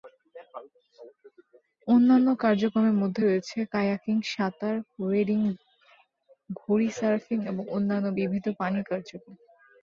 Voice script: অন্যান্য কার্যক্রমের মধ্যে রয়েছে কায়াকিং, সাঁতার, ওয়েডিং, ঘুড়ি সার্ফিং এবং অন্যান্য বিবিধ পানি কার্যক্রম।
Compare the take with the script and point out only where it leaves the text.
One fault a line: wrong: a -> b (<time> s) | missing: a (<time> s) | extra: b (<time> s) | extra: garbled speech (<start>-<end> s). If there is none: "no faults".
no faults